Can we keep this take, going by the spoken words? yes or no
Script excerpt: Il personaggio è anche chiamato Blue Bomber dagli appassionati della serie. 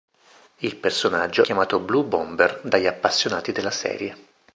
no